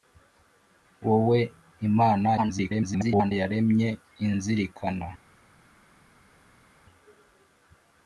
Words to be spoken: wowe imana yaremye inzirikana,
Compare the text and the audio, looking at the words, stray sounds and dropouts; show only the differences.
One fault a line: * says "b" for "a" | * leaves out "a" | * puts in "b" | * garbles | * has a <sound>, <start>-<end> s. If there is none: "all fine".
* garbles